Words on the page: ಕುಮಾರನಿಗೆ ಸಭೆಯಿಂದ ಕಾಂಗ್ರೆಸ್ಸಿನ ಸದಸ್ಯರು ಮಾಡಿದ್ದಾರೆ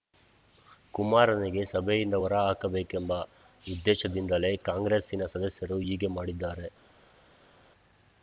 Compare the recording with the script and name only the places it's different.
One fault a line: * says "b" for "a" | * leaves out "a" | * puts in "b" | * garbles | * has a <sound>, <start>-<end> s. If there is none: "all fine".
* puts in "ಹೊರ ಹಾಕಬೇಕೆಂಬ ಉದ್ದೇಶದಿಂದಲೇ"
* puts in "ಹೀಗೆ"